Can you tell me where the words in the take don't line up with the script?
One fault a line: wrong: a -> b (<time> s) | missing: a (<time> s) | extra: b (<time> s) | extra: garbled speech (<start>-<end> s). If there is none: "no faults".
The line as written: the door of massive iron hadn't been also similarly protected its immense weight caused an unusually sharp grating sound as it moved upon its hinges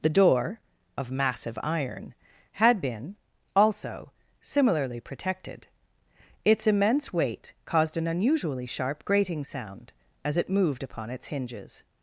wrong: hadn't -> had (2.5 s)